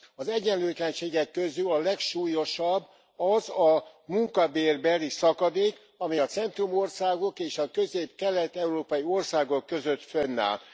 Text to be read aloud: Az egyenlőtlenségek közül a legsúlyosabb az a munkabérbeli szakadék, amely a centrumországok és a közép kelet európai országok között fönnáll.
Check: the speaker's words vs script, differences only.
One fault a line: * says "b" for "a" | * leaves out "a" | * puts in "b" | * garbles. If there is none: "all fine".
all fine